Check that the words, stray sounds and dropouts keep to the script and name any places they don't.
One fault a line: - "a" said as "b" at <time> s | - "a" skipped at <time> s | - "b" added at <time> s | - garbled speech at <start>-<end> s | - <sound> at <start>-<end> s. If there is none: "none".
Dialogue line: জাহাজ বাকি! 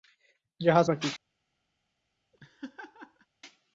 - laugh at 2.3-3.3 s